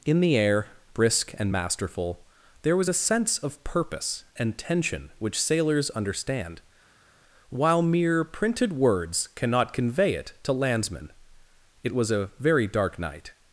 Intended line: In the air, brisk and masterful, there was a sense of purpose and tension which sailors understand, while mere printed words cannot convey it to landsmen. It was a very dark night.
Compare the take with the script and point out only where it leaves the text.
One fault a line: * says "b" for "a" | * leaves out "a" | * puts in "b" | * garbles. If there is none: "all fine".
all fine